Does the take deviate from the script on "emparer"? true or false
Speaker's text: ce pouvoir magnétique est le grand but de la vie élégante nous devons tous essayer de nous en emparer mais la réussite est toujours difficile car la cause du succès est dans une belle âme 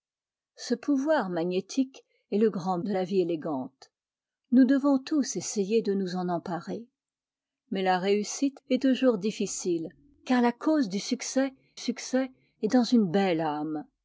false